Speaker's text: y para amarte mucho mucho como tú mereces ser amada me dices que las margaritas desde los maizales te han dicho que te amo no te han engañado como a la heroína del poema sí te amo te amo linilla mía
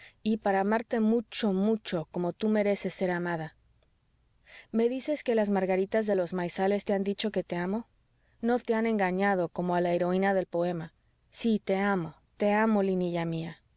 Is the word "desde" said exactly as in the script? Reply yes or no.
no